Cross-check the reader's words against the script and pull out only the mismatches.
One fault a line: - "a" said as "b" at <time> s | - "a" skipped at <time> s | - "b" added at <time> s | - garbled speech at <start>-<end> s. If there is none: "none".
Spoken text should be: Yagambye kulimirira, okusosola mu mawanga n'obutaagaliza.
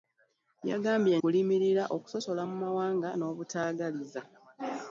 none